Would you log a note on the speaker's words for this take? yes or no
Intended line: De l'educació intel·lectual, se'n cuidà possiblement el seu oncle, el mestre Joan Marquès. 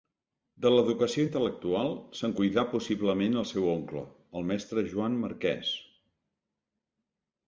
no